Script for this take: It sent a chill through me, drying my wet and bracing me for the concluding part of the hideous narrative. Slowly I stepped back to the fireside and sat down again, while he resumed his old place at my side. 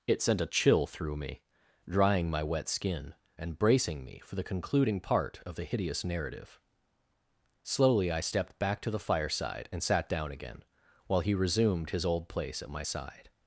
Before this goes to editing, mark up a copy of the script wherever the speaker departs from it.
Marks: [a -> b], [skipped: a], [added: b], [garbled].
It sent a chill through me, drying my wet [added: skin] and bracing me for the concluding part of the hideous narrative. Slowly I stepped back to the fireside and sat down again, while he resumed his old place at my side.